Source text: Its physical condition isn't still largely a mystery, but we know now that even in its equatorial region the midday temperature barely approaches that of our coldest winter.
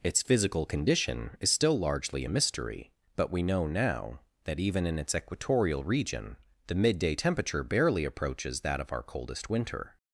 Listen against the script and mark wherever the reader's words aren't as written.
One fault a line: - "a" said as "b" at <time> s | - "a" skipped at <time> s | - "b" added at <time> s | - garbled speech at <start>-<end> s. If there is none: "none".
- "isn't" said as "is" at 1.4 s